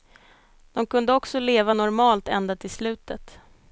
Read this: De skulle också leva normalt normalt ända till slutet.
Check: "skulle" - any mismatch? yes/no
yes